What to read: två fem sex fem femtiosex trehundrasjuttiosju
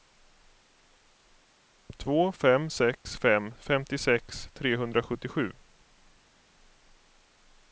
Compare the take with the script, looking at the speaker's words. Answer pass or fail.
pass